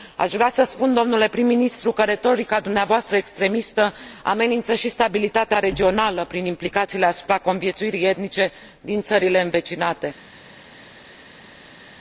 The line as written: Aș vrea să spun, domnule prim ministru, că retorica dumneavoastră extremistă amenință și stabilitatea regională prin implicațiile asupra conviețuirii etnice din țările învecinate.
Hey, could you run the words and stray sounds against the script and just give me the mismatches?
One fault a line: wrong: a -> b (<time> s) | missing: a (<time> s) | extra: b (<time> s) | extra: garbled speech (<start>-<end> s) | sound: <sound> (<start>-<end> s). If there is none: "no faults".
no faults